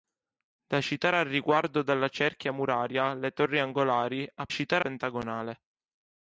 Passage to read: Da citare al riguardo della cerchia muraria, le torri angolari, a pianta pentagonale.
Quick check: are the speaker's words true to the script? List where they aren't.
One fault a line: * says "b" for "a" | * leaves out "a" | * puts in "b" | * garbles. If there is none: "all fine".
* says "citare" for "pianta"